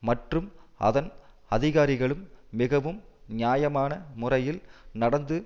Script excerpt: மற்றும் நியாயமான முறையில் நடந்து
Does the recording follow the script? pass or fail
fail